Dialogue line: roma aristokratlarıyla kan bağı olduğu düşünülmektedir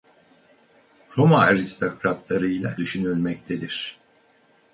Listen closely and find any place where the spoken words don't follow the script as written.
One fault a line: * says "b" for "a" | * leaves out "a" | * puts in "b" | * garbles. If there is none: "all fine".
* leaves out "kan bağı olduğu"